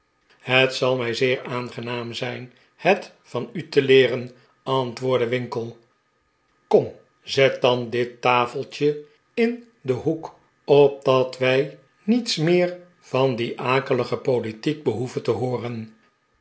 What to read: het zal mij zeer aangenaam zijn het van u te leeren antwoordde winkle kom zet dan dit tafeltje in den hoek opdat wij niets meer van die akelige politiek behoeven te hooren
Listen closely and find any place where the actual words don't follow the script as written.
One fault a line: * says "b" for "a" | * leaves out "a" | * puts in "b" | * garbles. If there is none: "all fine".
all fine